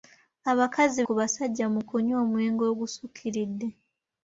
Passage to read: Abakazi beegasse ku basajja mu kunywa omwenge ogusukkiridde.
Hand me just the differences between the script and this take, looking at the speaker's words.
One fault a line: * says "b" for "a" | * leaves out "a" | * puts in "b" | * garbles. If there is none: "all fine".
* leaves out "beegasse"